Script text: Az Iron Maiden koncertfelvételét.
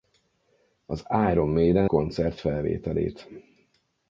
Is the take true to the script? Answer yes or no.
yes